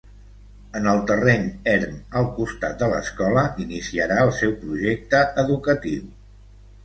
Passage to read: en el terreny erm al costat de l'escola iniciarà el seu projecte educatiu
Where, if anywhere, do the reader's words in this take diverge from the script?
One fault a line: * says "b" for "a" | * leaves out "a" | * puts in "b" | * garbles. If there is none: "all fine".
all fine